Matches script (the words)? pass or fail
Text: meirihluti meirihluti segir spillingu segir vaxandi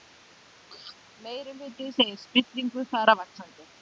fail